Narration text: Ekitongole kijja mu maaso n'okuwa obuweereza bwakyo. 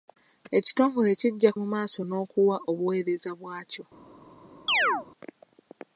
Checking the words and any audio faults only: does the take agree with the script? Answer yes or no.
no